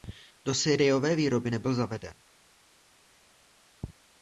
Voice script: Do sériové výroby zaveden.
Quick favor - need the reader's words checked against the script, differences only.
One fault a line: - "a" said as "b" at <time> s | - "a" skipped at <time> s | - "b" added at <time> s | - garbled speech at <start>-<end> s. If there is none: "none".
- "nebyl" added at 1.5 s